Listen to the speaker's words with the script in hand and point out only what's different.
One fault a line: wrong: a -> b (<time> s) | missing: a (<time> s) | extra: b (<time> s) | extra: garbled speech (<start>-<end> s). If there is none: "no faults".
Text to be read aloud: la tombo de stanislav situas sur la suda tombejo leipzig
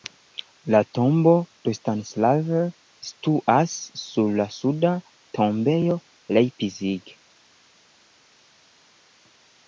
no faults